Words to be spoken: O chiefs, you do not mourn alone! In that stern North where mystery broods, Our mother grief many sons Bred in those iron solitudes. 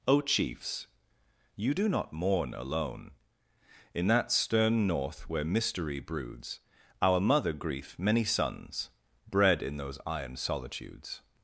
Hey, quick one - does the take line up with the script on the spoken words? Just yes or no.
yes